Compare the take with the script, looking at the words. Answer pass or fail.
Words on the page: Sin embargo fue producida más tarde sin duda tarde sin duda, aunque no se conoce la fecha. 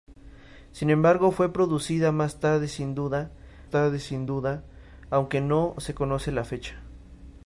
pass